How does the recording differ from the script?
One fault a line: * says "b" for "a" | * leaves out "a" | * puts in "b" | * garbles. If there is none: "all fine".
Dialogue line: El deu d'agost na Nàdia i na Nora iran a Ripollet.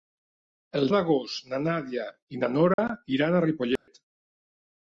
* leaves out "deu"